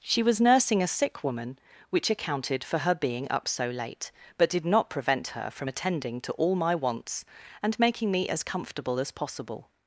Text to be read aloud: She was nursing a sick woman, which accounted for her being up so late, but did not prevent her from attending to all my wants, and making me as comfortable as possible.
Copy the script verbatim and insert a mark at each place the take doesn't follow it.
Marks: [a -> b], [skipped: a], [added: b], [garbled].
She was nursing a sick woman, which accounted for her being up so late, but did not prevent her from attending to all my wants, and making me as comfortable as possible.